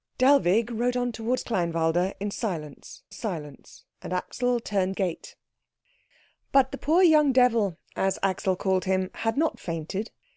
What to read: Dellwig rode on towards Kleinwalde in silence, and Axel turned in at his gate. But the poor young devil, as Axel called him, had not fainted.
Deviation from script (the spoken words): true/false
true